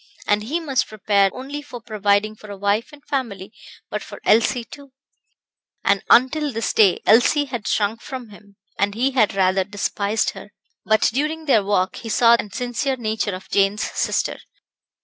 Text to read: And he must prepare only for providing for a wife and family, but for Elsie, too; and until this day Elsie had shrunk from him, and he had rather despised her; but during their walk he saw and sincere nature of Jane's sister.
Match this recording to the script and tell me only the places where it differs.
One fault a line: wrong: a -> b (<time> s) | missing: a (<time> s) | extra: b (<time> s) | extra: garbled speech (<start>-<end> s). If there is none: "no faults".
no faults